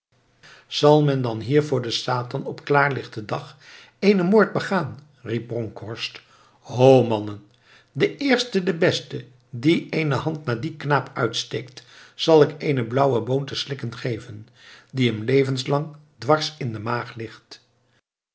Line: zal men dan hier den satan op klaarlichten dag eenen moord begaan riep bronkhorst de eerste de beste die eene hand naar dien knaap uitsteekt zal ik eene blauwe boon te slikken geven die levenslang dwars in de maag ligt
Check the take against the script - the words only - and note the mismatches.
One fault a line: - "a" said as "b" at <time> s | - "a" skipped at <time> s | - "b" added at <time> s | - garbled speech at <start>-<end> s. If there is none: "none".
- "voor" added at 1.6 s
- "ho mannen" added at 6.6 s
- "hem" added at 15.1 s